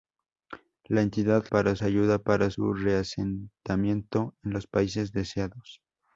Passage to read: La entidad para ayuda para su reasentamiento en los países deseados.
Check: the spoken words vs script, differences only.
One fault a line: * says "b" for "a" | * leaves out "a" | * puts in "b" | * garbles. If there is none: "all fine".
all fine